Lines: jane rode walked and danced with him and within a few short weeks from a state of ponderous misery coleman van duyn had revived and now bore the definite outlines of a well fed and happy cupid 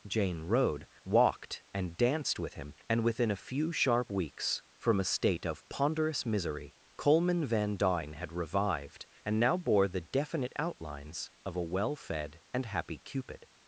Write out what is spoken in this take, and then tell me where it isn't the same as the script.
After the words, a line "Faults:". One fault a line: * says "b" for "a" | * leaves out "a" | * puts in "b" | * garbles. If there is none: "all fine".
jane rode walked and danced with him and within a few sharp weeks from a state of ponderous misery coleman van duyn had revived and now bore the definite outlines of a well fed and happy cupid
Faults:
* says "sharp" for "short"